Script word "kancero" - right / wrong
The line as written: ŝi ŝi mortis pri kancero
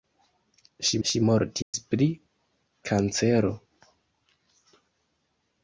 right